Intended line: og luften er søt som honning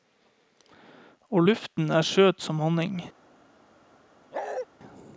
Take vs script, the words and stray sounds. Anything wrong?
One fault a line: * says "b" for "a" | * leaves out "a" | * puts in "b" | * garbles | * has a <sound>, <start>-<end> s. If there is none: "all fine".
* has a bark, 4.3-4.7 s